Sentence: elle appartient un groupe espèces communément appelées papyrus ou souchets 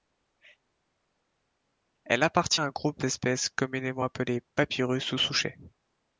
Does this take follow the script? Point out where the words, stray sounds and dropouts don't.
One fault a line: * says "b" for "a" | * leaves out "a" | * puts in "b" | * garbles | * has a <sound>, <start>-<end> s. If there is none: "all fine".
all fine